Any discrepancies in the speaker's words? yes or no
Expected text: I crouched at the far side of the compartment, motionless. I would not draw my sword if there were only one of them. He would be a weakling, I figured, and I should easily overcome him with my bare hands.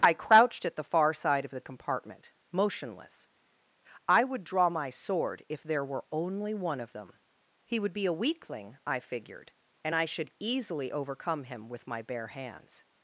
yes